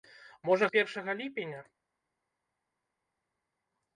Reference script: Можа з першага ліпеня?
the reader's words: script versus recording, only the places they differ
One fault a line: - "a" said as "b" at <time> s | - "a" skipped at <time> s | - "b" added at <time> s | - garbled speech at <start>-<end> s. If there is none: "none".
none